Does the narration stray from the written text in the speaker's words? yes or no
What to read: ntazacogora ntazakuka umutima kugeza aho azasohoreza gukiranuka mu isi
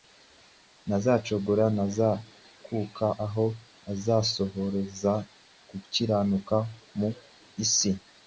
yes